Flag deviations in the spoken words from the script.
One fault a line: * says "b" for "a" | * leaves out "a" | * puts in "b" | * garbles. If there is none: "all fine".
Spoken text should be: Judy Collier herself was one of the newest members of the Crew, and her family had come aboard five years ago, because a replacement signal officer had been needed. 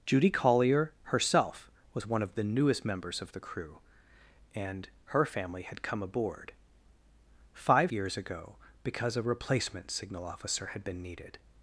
all fine